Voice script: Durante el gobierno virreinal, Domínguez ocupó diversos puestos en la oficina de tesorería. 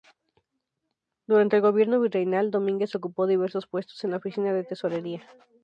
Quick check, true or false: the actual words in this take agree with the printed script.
true